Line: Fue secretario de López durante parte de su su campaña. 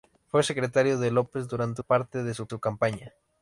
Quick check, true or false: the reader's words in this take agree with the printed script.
true